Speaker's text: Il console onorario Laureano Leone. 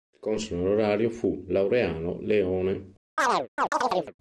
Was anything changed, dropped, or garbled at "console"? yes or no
no